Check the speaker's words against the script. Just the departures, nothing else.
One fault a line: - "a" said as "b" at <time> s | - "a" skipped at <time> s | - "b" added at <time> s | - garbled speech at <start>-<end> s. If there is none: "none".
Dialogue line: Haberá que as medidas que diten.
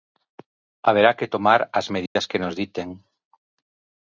- "tomar" added at 1.3 s
- "nos" added at 2.4 s